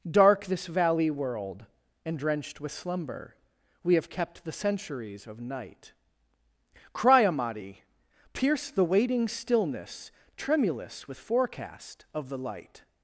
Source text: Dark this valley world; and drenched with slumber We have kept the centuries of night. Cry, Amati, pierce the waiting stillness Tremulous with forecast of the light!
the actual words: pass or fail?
pass